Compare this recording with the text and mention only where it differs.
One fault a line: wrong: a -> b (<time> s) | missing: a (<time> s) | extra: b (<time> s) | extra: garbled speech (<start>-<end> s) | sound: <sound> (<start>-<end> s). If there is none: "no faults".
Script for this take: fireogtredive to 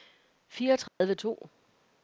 sound: dropout (0.9-1.0 s)